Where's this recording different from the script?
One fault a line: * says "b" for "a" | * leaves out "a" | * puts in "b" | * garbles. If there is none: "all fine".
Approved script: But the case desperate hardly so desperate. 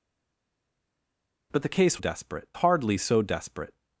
all fine